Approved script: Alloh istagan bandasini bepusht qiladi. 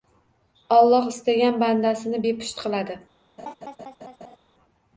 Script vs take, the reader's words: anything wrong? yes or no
no